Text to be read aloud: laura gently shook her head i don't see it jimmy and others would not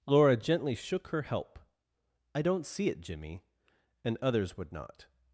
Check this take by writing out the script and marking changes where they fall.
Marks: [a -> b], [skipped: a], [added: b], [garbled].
laura gently shook her [head -> help] i don't see it jimmy and others would not